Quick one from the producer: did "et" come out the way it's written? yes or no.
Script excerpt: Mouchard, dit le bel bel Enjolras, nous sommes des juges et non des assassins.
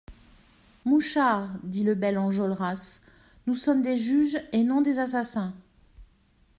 yes